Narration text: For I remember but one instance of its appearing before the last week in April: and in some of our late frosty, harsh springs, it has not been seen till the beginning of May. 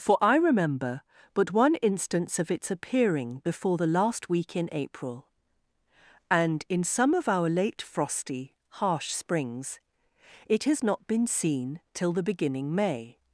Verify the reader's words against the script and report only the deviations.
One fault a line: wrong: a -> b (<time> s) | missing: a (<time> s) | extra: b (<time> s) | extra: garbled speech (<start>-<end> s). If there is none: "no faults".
missing: of (12.7 s)